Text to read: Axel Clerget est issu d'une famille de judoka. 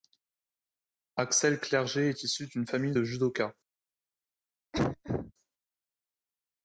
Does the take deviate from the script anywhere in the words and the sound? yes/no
yes